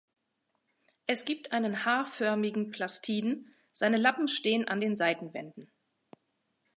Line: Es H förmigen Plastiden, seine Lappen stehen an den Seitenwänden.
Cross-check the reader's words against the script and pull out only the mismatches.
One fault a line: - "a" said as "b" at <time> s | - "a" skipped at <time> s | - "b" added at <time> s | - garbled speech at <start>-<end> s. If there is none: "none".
- "gibt einen" added at 1.2 s